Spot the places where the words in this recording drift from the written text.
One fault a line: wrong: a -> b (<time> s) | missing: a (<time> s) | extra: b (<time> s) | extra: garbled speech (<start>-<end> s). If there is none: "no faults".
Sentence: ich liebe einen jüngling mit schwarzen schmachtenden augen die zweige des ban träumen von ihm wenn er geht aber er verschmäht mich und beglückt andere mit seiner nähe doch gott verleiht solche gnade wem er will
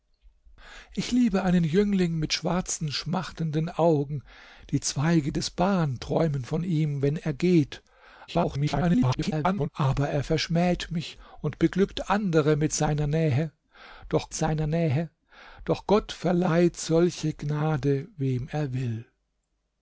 extra: garbled speech (8.3-9.7 s)
extra: seiner nähe doch (14.3 s)